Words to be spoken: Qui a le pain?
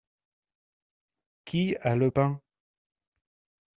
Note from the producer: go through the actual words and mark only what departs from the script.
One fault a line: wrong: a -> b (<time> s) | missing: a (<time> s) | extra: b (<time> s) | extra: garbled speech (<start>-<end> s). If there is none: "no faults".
no faults